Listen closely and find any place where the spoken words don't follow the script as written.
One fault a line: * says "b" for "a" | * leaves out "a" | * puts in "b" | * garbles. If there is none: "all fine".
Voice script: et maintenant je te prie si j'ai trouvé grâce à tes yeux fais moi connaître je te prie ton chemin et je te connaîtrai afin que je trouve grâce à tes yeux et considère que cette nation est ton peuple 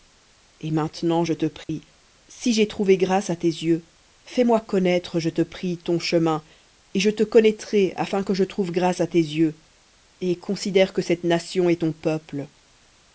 all fine